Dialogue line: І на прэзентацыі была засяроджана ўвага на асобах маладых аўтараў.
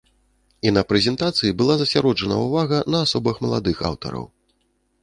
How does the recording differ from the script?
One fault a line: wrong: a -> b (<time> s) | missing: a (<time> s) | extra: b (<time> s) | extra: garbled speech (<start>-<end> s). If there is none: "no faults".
no faults